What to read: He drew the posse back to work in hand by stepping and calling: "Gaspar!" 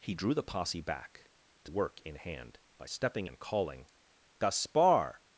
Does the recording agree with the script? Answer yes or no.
yes